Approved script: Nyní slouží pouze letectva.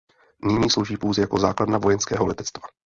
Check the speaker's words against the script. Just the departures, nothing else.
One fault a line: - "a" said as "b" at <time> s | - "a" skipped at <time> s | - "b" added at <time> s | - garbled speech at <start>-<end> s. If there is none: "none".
- "jako základna vojenského" added at 1.2 s